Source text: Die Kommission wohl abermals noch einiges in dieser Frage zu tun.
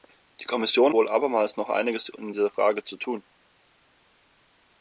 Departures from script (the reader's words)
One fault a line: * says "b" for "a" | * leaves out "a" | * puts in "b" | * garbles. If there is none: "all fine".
all fine